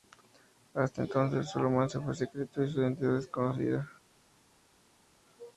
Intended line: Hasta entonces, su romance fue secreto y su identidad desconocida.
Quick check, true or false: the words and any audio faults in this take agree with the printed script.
true